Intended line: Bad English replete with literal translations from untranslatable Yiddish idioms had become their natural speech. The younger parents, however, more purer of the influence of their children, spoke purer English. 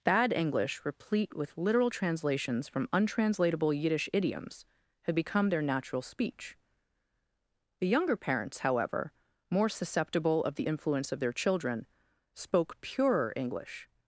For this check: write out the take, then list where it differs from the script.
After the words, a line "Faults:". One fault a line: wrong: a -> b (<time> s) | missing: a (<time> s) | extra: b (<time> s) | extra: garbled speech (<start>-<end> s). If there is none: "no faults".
Bad English replete with literal translations from untranslatable Yiddish idioms had become their natural speech. The younger parents, however, more susceptible of the influence of their children, spoke purer English.
Faults:
wrong: purer -> susceptible (9.7 s)